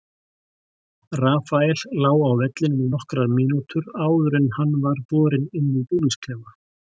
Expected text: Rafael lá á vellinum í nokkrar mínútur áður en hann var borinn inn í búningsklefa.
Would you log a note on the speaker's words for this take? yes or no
no